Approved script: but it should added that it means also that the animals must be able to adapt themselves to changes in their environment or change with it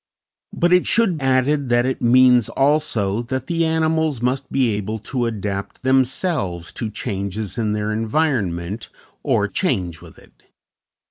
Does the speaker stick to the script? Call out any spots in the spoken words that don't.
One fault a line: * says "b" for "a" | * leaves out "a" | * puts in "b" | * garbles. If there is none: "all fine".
all fine